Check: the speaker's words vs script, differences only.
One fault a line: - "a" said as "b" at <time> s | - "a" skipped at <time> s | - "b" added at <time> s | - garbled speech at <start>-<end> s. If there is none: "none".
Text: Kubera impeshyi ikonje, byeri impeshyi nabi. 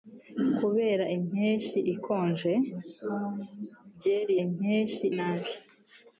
none